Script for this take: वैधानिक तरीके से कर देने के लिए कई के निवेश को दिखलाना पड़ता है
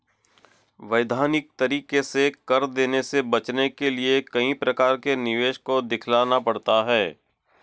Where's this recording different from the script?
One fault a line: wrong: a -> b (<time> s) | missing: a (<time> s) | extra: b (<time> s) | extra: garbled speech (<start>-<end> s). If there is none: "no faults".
extra: से बचने (3.0 s)
extra: प्रकार (4.6 s)